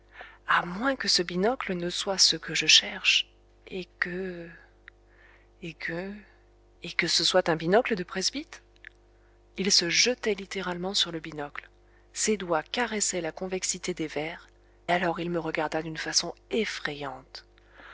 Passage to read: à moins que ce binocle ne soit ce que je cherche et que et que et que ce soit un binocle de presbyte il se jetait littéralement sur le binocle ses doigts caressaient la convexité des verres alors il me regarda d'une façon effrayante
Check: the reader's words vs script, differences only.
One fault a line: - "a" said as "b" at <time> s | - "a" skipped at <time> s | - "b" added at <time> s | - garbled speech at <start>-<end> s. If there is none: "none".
none